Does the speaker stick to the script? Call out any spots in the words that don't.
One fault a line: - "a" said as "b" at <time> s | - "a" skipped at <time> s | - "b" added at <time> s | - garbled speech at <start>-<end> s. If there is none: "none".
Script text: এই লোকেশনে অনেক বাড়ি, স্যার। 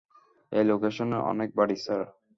none